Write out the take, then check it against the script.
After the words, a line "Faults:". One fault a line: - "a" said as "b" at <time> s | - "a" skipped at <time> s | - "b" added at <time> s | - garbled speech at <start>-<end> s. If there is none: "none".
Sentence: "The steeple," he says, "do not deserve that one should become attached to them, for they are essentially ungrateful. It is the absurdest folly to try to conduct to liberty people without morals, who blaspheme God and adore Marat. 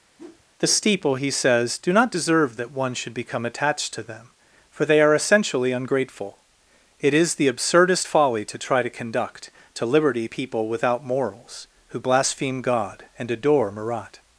"The steeple," he says, "do not deserve that one should become attached to them, for they are essentially ungrateful. It is the absurdest folly to try to conduct to liberty people without morals, who blaspheme God and adore Marat.
Faults:
none